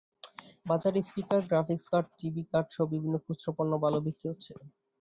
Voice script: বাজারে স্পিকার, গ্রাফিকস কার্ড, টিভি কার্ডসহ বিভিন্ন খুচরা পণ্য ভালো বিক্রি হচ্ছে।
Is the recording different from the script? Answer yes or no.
no